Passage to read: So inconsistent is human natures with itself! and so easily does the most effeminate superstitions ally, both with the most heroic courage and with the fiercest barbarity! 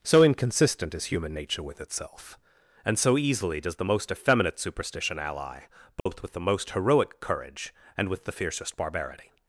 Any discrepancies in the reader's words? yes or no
yes